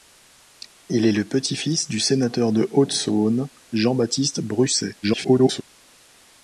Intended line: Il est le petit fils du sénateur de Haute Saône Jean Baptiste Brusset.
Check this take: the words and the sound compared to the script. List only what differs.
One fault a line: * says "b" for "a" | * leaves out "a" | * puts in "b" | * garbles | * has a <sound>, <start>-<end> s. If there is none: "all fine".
* garbles